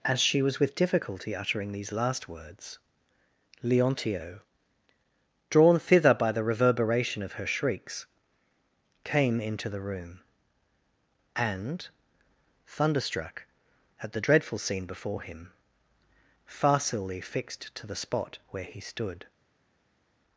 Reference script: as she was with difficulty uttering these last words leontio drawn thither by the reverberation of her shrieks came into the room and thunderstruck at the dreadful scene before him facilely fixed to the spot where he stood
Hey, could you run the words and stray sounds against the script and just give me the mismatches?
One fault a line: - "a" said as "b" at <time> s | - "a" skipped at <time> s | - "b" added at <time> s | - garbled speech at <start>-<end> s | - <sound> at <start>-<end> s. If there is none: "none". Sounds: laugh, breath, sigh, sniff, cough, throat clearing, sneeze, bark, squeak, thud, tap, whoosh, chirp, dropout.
none